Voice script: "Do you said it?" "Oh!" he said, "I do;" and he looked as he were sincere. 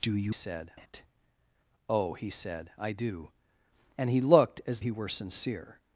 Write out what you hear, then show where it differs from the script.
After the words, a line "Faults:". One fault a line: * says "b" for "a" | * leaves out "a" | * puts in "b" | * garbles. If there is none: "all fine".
"Do you said it?" "Oh!" he said, "I do;" and he looked as he were sincere.
Faults:
all fine